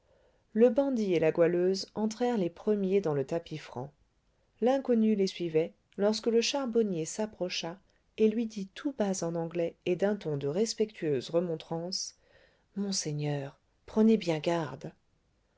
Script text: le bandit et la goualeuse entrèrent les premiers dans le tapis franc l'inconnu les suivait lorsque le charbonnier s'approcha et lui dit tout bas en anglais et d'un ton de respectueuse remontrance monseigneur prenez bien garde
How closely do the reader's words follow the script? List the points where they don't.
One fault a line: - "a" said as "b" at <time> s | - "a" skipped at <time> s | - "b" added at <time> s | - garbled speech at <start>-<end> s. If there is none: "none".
none